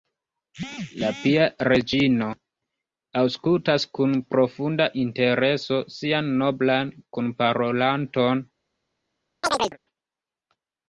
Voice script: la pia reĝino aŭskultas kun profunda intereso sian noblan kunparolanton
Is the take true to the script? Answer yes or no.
yes